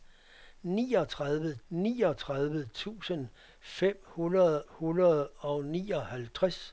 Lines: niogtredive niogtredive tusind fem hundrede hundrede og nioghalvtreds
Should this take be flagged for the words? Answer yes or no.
no